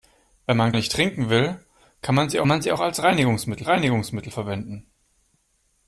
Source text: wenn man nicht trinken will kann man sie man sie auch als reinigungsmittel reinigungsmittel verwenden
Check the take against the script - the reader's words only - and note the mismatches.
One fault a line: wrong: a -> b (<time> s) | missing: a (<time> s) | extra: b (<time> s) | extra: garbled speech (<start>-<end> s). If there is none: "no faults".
no faults